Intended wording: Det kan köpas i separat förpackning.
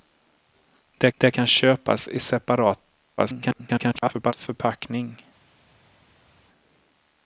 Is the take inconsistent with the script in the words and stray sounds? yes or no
yes